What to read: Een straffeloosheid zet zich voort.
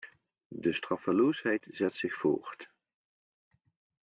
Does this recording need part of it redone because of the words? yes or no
yes